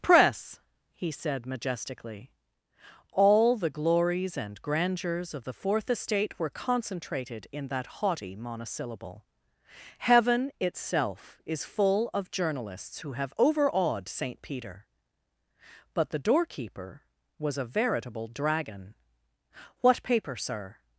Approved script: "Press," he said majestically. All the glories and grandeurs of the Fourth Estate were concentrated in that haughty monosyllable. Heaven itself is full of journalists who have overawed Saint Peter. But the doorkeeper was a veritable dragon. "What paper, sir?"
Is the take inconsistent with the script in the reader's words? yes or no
no